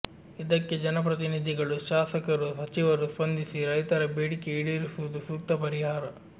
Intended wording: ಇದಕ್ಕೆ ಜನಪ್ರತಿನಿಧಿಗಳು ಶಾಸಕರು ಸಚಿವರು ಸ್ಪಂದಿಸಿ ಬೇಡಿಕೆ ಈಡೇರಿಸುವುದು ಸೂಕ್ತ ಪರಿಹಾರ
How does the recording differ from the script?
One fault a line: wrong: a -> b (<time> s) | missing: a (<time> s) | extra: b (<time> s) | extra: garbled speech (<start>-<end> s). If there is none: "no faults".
extra: ರೈತರ (3.7 s)